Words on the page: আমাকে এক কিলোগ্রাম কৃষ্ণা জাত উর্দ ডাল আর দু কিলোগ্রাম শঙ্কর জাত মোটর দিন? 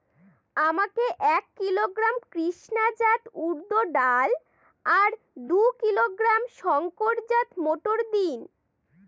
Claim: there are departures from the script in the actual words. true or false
false